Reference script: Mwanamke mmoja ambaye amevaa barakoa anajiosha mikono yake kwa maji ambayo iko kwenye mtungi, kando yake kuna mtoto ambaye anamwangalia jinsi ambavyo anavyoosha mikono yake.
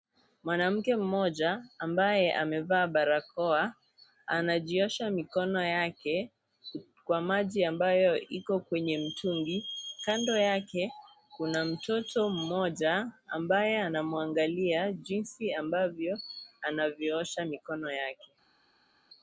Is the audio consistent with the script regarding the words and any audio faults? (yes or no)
no